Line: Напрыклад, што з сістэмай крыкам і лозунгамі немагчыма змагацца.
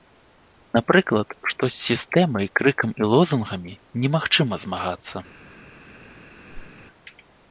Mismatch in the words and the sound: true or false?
true